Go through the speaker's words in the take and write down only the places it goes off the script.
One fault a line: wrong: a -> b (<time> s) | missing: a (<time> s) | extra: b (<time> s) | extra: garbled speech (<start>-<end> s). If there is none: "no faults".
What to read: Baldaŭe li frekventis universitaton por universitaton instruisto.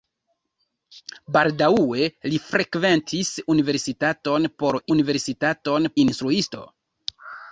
no faults